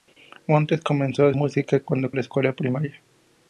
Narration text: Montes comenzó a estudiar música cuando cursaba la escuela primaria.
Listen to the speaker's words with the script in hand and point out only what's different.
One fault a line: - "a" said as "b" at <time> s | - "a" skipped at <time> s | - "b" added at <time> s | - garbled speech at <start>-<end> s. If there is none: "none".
- "estudiar" skipped at 1.3 s
- "cursaba" skipped at 2.1 s